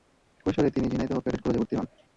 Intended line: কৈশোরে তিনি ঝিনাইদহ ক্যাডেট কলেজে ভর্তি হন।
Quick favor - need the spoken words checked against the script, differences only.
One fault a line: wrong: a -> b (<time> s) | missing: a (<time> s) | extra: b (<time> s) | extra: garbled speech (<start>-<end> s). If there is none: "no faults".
no faults